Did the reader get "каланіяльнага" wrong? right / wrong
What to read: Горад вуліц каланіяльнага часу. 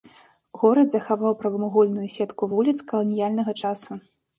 right